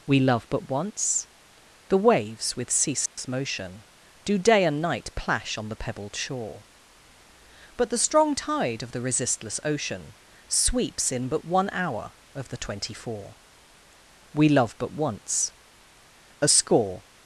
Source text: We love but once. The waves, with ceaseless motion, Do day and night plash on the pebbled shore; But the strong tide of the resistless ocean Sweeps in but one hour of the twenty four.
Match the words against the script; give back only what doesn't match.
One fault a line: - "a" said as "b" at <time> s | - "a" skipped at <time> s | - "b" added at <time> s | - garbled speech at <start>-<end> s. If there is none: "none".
- "We love but once A score" added at 14.3 s